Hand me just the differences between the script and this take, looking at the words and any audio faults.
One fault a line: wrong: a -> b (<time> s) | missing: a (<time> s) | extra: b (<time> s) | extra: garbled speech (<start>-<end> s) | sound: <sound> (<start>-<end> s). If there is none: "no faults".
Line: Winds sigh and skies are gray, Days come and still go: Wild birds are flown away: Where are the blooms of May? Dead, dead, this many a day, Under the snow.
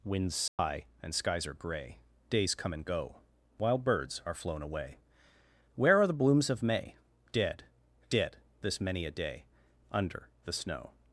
sound: dropout (0.5-0.6 s)
missing: still (2.8 s)